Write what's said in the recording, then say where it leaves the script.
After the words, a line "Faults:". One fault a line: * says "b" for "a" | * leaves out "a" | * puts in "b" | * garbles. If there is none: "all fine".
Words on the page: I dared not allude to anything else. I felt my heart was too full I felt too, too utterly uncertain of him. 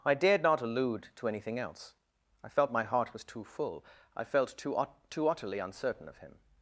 I dared not allude to anything else. I felt my heart was too full I felt too, too utterly uncertain of him.
Faults:
all fine